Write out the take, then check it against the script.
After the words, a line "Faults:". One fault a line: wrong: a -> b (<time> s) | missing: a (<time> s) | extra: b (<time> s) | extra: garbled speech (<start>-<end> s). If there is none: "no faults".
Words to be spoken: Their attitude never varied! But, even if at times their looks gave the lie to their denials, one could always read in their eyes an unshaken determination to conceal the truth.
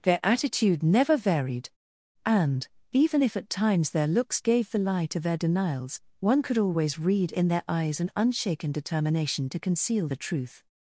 Their attitude never varied! And, even if at times their looks gave the lie to their denials, one could always read in their eyes an unshaken determination to conceal the truth.
Faults:
wrong: But -> And (2.2 s)